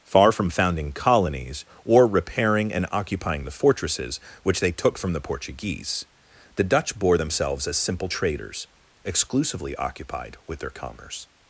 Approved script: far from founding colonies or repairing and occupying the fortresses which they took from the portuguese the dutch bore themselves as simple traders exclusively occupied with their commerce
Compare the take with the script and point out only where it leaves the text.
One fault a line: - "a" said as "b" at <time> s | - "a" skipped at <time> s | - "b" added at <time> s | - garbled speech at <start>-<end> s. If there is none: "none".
none